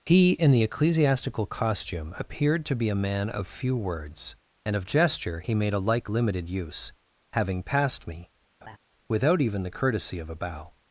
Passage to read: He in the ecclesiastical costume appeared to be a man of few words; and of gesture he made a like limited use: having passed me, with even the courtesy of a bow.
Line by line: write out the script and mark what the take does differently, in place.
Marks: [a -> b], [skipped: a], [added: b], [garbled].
He in the ecclesiastical costume appeared to be a man of few words; and of gesture he made a like limited use: having passed me, [with -> without] even the courtesy of a bow.